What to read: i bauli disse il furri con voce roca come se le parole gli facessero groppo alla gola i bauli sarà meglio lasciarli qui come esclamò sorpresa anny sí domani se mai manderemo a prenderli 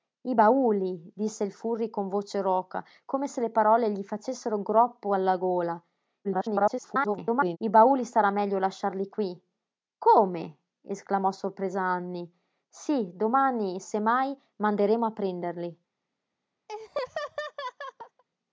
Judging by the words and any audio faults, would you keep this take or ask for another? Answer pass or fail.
fail